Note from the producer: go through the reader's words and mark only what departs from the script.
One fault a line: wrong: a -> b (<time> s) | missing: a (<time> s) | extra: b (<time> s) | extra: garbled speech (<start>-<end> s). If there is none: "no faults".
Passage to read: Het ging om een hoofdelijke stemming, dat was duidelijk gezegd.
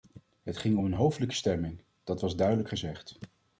no faults